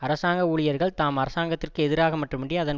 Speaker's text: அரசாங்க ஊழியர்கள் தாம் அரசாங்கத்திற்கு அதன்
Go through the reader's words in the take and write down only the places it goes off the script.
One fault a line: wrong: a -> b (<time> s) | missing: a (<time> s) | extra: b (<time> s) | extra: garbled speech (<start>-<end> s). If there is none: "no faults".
extra: எதிராக மட்டுமன்றி (1.8 s)